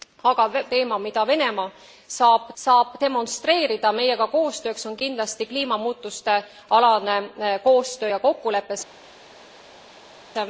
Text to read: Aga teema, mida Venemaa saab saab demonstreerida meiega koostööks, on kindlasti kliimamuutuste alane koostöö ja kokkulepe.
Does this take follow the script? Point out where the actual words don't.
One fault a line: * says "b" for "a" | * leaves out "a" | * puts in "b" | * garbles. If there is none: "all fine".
all fine